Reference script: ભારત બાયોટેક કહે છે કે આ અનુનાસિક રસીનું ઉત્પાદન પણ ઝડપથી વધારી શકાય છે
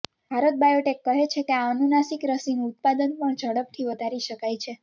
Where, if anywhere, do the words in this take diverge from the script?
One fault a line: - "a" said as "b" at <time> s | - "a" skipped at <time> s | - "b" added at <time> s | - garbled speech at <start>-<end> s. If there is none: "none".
none